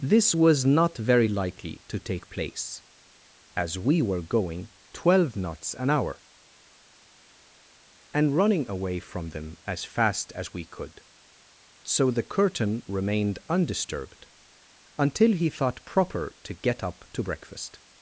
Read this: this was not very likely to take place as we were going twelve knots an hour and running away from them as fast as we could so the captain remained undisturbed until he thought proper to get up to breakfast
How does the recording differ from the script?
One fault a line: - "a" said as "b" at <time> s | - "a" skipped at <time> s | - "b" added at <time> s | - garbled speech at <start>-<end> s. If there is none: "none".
- "captain" said as "curtain" at 12.2 s